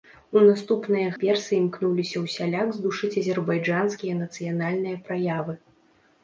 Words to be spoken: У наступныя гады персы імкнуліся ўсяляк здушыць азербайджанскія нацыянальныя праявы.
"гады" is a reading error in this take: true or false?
true